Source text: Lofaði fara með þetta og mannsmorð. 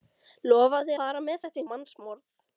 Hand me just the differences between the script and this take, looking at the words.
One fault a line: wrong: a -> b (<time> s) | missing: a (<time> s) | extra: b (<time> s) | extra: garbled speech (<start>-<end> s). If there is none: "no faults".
no faults